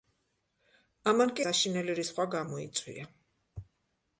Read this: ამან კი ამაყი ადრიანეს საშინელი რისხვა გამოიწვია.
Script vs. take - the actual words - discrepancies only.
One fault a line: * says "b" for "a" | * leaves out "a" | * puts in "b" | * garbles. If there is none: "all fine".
* leaves out "ამაყი ადრიანეს"